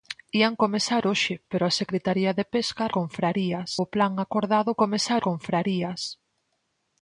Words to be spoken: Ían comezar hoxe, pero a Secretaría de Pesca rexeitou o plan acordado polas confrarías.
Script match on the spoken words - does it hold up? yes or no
no